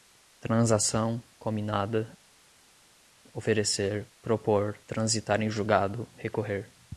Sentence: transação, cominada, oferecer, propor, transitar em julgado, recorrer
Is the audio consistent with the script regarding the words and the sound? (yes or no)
yes